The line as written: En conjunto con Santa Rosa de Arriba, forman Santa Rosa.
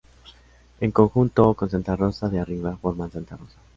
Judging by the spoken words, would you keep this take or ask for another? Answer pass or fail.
pass